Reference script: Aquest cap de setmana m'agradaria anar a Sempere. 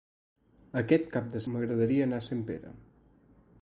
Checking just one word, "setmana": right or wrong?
wrong